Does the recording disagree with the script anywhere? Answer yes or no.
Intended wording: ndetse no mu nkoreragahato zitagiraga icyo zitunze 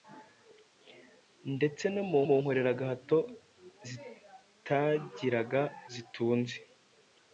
yes